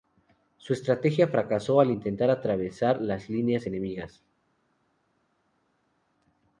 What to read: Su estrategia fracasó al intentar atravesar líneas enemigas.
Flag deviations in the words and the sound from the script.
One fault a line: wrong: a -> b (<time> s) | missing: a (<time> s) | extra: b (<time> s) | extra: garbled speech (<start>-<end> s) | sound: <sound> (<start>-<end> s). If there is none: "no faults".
extra: las (3.0 s)